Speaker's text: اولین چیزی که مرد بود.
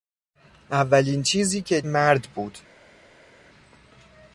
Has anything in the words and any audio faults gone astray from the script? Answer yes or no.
no